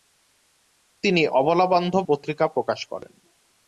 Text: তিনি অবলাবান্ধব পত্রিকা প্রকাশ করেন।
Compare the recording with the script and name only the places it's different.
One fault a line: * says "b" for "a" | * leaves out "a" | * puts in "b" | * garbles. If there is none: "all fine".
all fine